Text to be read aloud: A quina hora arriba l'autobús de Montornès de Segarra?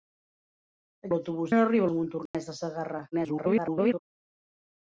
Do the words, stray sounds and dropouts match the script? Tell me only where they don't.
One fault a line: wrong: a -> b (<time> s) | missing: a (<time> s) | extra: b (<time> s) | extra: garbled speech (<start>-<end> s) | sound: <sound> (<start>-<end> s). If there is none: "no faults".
wrong: quina -> l'autobús (1.1 s)
missing: l'autobús (1.9 s)
sound: dropout (2.3-2.3 s)
extra: garbled speech (3.1-4.0 s)